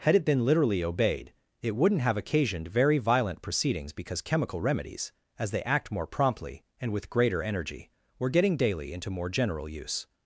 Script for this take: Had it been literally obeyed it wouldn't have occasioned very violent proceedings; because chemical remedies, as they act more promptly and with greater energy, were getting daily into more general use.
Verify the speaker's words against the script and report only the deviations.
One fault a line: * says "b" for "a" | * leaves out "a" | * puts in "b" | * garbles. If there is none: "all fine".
all fine